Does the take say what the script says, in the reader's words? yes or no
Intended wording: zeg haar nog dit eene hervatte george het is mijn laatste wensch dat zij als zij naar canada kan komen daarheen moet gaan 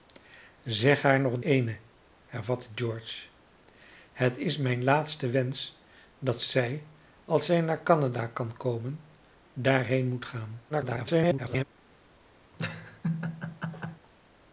no